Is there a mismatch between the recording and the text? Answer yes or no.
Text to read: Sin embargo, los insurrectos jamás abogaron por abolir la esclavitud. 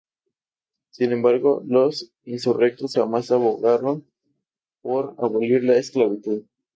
no